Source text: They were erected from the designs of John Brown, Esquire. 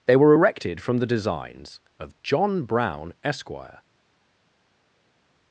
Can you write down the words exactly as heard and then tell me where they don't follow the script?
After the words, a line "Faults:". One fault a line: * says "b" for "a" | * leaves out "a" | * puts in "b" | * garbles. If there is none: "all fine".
They were erected from the designs of John Brown, Esquire.
Faults:
all fine